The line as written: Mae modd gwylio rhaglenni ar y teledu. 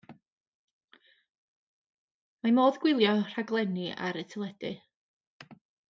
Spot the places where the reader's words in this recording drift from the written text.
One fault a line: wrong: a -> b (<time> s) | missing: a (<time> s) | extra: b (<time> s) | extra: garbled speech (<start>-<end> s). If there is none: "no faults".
no faults